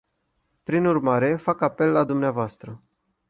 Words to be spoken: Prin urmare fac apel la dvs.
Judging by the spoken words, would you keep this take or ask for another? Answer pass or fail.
pass